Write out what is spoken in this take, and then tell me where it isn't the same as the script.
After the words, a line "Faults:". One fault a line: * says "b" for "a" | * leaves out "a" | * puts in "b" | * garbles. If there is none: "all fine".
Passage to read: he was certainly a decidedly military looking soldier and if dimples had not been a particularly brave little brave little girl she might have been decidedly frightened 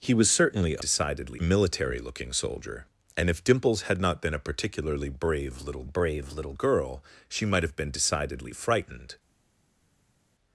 he was certainly a decidedly military looking soldier and if dimples had not been a particularly brave little brave little girl she might have been decidedly frightened
Faults:
all fine